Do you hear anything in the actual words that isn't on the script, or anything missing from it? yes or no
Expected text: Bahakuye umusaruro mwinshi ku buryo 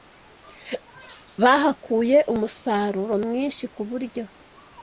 no